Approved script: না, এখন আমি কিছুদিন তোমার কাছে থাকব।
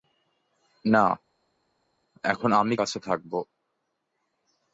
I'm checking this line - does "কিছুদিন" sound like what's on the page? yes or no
no